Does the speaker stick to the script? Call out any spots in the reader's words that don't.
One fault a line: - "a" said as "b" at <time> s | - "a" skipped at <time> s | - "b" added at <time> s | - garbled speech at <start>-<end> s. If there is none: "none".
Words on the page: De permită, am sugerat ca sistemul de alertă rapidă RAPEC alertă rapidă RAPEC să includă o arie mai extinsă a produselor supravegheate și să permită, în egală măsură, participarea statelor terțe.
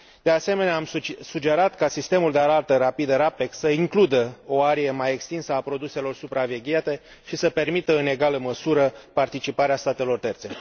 - "permită" said as "asemenea" at 0.3 s
- "alertă rapidă RAPEC" skipped at 3.5 s